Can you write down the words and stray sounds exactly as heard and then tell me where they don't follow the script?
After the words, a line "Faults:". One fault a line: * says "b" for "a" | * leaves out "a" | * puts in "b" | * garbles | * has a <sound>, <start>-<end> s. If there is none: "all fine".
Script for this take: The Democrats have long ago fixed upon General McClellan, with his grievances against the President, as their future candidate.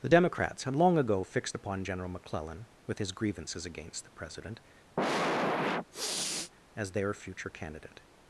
The Democrats had long ago fixed upon General McClellan, with his grievances against the President, as their future candidate.
Faults:
* says "had" for "have"
* has a sniff, 5.0-6.5 s